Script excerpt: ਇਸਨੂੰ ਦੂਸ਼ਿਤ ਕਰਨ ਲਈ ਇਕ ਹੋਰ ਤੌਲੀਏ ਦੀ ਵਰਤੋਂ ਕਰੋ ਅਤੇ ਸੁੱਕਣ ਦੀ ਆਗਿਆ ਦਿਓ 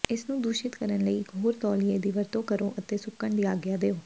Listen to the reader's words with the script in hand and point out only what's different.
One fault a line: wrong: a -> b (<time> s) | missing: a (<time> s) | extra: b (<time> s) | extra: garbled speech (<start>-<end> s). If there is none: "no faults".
no faults